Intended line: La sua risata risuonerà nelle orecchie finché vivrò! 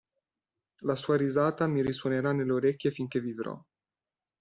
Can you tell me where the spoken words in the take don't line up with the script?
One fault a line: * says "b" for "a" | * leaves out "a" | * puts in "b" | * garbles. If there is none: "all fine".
* puts in "mi"